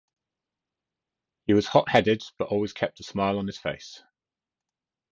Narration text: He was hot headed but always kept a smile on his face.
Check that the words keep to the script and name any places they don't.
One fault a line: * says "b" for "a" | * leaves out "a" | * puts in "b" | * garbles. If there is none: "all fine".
all fine